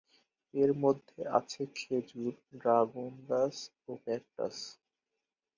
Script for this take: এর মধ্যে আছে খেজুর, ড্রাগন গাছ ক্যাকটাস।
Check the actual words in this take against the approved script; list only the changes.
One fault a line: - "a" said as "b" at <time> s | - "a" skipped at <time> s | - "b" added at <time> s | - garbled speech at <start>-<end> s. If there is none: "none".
- "ও" added at 3.9 s